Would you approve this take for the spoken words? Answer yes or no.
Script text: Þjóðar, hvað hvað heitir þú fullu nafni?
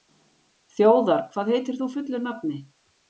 no